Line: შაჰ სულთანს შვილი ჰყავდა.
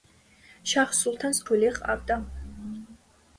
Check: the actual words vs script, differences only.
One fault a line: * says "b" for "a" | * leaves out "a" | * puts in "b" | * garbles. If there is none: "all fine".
all fine